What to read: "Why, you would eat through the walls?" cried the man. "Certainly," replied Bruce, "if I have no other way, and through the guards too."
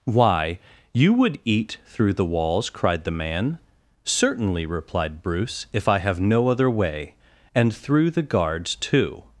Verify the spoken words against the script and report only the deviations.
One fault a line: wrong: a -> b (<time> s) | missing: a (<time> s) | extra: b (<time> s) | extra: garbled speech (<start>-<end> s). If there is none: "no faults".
no faults